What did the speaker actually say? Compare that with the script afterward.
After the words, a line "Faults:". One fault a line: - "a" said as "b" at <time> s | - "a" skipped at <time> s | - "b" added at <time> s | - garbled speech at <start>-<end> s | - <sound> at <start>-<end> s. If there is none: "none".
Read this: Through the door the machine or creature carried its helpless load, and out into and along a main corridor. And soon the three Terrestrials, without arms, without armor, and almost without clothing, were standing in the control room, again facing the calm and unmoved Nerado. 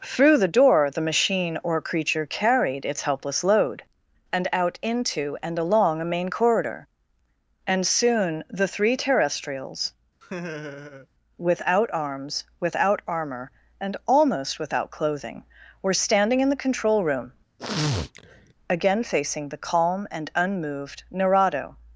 Through the door the machine or creature carried its helpless load, and out into and along a main corridor. And soon the three Terrestrials, without arms, without armor, and almost without clothing, were standing in the control room, again facing the calm and unmoved Nerado.
Faults:
- laugh at 10.2-11.1 s
- sniff at 17.6-18.5 s